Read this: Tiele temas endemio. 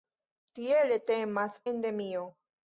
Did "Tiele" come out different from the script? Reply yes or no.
no